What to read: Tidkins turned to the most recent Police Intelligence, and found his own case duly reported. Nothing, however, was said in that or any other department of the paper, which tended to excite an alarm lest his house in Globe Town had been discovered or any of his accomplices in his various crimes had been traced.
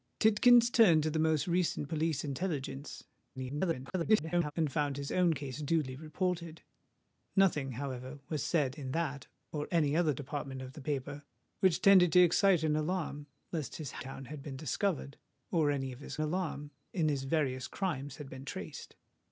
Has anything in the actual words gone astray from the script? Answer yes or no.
yes